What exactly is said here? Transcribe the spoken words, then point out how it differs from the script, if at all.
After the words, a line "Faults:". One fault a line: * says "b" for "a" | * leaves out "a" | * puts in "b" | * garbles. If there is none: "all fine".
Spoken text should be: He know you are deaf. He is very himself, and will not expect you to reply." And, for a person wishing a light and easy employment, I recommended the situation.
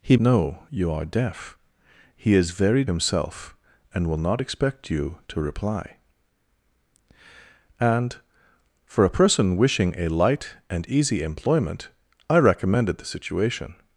He know you are deaf. He is very himself, and will not expect you to reply." And, for a person wishing a light and easy employment, I recommended the situation.
Faults:
all fine